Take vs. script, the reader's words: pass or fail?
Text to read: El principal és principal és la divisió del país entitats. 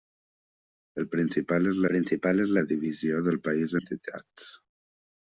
pass